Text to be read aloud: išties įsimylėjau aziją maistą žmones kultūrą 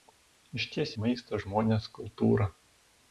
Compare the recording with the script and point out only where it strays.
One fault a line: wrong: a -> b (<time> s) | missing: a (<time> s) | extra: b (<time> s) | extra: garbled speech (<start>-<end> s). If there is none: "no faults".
missing: įsimylėjau aziją (0.9 s)